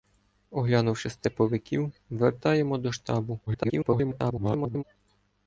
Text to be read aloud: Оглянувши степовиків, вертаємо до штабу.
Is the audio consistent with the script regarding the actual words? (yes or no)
no